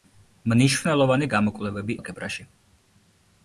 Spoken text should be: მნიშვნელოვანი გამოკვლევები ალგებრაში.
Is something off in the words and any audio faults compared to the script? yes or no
no